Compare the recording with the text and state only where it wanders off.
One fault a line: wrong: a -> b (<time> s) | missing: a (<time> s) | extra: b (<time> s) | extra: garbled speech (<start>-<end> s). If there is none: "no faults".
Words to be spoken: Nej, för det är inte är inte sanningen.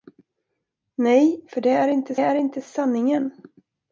no faults